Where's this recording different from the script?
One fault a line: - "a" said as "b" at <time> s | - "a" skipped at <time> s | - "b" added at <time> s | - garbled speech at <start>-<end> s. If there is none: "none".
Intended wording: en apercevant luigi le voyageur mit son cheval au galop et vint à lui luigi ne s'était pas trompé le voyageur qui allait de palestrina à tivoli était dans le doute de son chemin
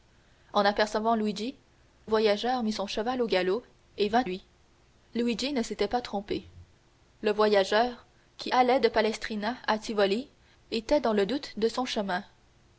- "le" skipped at 1.5 s
- "à" skipped at 4.2 s